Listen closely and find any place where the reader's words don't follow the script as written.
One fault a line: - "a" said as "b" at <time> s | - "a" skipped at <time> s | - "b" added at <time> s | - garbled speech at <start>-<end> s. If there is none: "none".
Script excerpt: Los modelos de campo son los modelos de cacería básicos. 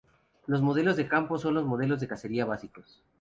none